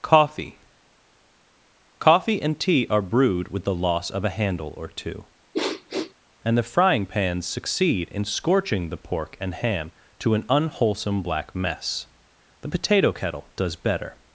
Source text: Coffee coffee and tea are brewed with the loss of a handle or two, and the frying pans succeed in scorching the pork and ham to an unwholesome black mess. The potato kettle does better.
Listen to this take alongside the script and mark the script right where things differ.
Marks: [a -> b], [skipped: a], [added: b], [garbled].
Coffee coffee and tea are brewed with the loss of a handle or two, and the frying pans succeed in scorching the pork and ham to an unwholesome black mess. The potato kettle does better.